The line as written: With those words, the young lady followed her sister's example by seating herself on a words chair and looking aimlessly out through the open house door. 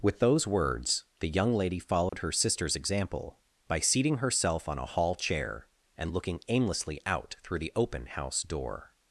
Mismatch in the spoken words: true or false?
true